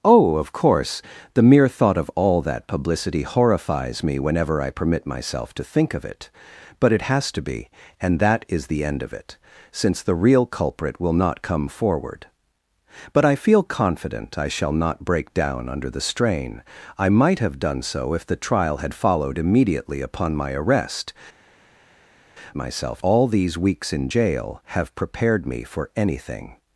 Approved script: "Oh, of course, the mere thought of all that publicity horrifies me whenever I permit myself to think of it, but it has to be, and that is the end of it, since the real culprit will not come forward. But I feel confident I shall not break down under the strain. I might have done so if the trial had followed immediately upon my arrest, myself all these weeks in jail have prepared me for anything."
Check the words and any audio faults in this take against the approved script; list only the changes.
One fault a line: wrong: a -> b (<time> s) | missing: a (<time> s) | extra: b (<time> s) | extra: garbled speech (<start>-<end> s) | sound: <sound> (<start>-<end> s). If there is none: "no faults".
no faults